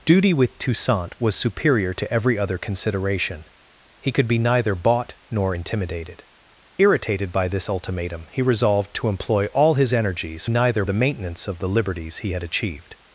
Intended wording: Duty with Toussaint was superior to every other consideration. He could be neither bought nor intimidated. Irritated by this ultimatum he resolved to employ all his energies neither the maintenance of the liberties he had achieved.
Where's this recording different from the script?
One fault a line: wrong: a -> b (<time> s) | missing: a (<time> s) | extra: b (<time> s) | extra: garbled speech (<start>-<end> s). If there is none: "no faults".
no faults